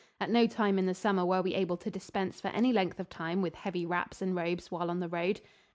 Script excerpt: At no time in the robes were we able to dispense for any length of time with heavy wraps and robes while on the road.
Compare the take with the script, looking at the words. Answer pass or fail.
fail